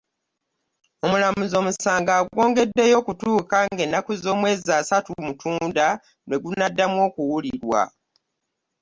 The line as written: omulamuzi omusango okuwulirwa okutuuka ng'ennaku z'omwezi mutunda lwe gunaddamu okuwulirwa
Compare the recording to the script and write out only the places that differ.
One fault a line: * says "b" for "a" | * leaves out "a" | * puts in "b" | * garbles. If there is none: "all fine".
* says "agwongeddeyo" for "okuwulirwa"
* puts in "asatu"